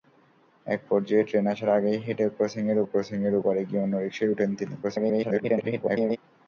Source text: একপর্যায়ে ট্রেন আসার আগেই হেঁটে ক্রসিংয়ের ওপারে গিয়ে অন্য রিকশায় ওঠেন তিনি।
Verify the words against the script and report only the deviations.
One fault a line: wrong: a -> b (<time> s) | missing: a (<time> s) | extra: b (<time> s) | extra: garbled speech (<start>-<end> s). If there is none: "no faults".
extra: ক্রসিংয়ের (2.9 s)
extra: garbled speech (4.8-6.2 s)